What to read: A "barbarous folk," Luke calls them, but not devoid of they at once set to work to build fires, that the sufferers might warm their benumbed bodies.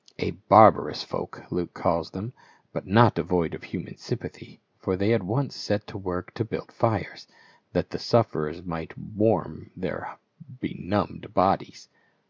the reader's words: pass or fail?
fail